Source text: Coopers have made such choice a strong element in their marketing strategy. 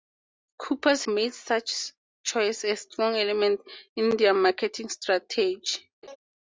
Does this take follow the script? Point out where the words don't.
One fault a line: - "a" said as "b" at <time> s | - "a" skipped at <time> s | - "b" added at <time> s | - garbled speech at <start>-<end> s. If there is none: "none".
- "have" skipped at 1.1 s